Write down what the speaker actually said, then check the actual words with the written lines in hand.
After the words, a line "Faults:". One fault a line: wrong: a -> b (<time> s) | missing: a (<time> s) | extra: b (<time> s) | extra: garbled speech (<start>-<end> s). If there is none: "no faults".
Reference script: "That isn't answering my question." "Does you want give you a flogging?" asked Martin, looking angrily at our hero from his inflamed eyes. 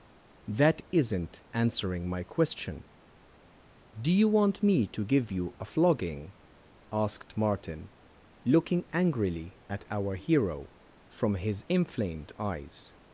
"That isn't answering my question." "Do you want me to give you a flogging?" asked Martin, looking angrily at our hero from his inflamed eyes.
Faults:
wrong: Does -> Do (4.0 s)
extra: me to (4.6 s)